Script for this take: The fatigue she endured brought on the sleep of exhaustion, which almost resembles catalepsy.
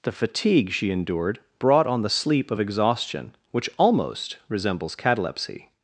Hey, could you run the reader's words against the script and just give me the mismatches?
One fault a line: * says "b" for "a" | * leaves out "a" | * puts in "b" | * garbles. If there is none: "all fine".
all fine